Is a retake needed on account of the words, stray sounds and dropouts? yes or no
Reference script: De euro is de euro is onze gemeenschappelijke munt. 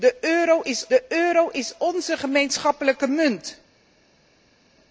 no